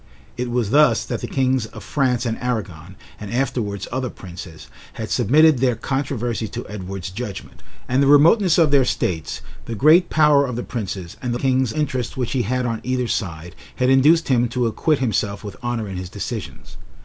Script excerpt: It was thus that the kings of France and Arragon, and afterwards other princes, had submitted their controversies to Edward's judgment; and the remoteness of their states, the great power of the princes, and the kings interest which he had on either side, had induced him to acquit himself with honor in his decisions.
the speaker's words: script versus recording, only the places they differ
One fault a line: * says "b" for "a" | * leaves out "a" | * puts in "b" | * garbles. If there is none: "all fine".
all fine